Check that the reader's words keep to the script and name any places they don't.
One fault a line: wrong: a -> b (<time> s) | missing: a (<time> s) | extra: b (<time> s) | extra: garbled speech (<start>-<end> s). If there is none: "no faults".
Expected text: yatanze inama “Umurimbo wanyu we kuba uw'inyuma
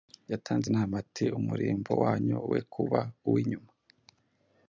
extra: ati (1.0 s)